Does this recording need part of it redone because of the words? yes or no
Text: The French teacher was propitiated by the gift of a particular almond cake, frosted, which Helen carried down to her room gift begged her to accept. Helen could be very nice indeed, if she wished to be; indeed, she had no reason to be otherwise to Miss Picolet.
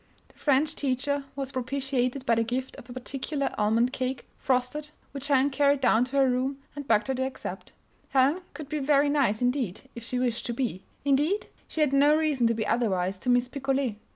yes